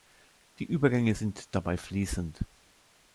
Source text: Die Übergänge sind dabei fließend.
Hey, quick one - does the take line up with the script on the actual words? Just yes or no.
yes